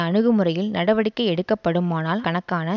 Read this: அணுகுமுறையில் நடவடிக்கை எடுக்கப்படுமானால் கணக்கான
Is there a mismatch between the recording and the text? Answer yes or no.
no